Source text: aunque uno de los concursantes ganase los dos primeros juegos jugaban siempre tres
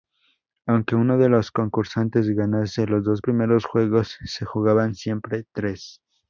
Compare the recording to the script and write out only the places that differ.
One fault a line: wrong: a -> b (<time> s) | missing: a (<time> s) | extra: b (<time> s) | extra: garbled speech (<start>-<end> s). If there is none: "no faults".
extra: se (4.2 s)